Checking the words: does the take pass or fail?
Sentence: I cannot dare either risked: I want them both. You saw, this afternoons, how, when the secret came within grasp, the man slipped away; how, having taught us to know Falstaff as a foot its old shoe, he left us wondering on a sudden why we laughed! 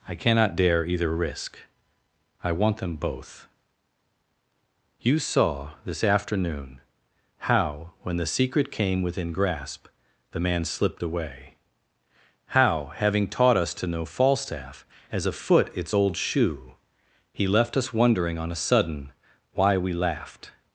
fail